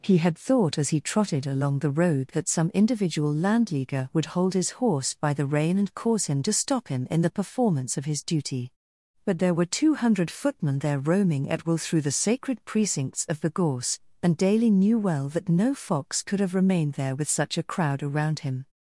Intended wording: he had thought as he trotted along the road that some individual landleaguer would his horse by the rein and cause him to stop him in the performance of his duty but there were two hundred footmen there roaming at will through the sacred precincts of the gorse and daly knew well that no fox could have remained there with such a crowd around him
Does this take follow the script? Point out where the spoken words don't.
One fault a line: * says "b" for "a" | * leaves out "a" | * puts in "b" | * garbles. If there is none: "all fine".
* puts in "hold"